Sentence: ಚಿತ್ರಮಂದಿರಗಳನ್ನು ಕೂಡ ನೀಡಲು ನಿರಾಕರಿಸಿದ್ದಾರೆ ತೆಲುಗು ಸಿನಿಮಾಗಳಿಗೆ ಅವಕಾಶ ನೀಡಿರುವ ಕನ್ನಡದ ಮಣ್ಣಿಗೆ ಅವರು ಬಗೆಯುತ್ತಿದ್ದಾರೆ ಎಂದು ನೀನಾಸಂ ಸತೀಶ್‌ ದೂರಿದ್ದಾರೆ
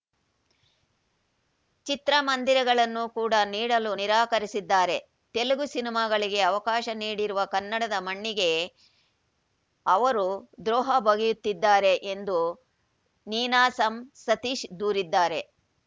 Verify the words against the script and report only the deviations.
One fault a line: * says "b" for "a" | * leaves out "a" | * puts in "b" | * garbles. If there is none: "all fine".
* puts in "ದ್ರೋಹ"